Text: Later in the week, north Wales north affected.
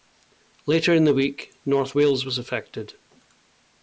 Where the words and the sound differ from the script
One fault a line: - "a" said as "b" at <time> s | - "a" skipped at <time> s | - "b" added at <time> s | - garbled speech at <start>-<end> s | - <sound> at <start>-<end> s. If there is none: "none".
- "north" said as "was" at 2.2 s